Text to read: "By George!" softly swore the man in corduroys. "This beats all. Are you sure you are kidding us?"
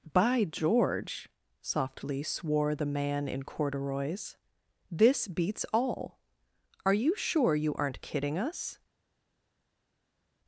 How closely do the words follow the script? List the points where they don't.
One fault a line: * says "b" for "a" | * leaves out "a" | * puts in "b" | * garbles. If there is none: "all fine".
* says "aren't" for "are"